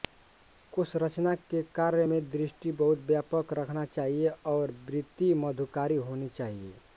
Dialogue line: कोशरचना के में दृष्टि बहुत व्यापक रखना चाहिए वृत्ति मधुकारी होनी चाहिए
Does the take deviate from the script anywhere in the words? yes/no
yes